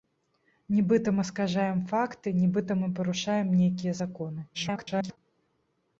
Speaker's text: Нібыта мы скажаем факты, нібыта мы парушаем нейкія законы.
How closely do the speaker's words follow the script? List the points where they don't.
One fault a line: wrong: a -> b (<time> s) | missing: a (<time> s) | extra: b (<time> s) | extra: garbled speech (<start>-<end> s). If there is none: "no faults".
extra: garbled speech (4.5-5.2 s)